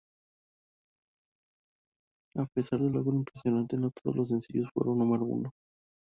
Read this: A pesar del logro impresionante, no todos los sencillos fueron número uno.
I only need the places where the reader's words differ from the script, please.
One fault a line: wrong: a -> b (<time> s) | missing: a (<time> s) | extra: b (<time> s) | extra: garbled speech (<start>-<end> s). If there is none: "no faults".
no faults